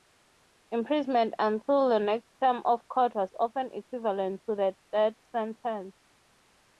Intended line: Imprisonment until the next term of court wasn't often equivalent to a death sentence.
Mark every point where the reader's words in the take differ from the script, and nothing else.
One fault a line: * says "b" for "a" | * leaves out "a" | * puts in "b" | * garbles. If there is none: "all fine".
* says "was" for "wasn't"